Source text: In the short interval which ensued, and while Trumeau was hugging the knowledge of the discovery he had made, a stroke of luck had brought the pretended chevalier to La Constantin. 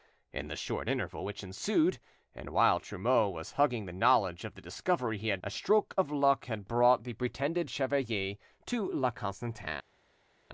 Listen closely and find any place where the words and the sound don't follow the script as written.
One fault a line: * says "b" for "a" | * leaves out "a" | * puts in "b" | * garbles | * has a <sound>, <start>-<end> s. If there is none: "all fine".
* leaves out "made"